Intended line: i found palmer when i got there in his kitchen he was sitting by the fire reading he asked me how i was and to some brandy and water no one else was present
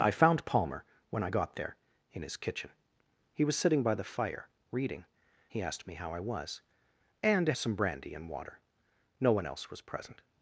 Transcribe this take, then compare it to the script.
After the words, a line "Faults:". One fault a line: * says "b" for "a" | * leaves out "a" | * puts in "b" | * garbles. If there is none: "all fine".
i found palmer when i got there in his kitchen he was sitting by the fire reading he asked me how i was and to some brandy and water no one else was present
Faults:
all fine